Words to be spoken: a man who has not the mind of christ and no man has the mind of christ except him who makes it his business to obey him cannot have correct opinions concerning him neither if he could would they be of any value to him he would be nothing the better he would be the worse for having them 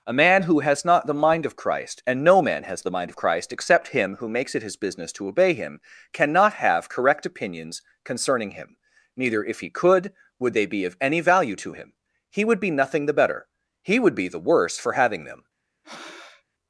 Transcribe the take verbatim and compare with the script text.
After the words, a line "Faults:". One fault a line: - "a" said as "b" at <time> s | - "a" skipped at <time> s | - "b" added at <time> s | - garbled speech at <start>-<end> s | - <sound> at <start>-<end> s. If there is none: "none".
a man who has not the mind of christ and no man has the mind of christ except him who makes it his business to obey him cannot have correct opinions concerning him neither if he could would they be of any value to him he would be nothing the better he would be the worse for having them
Faults:
- breath at 15.8-16.4 s